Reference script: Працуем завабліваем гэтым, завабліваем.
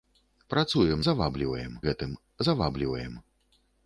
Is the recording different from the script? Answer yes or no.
no